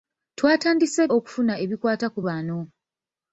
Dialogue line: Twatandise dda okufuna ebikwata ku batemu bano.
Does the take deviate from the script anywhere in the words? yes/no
yes